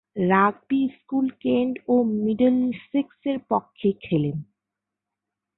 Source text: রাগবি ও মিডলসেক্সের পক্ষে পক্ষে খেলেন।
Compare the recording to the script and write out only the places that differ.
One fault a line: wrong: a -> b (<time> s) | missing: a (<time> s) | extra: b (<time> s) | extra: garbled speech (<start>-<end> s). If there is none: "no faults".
extra: স্কুল কেন্ট (1.0 s)
missing: পক্ষে (3.9 s)